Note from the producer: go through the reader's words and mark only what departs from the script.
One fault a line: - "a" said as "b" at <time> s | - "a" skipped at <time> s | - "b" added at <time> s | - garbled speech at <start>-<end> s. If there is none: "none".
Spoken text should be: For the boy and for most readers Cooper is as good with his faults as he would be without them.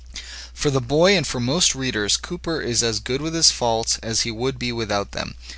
none